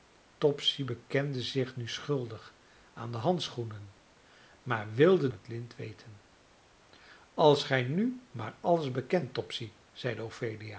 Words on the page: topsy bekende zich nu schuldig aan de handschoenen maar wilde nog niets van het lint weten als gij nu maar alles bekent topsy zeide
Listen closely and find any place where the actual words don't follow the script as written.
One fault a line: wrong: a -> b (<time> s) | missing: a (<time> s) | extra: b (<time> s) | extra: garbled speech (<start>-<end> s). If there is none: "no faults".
missing: nog niets van (5.3 s)